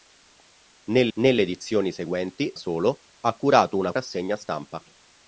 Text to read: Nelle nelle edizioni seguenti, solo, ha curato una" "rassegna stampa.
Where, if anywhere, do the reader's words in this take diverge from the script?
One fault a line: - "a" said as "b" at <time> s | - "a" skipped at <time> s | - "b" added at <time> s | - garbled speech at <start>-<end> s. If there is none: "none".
none